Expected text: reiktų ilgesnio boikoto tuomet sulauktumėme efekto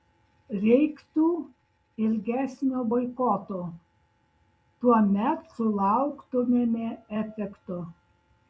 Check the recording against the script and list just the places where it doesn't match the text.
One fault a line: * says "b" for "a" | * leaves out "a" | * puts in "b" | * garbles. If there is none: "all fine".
all fine